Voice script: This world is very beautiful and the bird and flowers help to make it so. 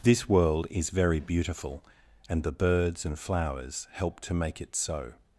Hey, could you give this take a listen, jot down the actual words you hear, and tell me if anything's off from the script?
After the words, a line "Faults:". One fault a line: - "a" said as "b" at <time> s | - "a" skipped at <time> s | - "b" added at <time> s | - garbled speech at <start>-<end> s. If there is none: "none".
This world is very beautiful and the birds and flowers help to make it so.
Faults:
- "bird" said as "birds" at 2.5 s